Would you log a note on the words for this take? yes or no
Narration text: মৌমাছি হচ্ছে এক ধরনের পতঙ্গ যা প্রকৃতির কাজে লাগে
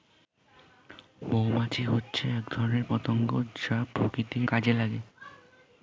no